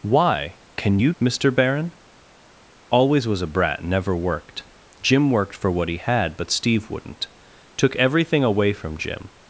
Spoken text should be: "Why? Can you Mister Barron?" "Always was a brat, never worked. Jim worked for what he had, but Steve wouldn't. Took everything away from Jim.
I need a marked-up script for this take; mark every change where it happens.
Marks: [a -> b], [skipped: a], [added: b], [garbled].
"Why? Can you Mister Barron?" "Always was a brat, never worked. Jim worked for what he had, but Steve wouldn't. Took everything away from Jim.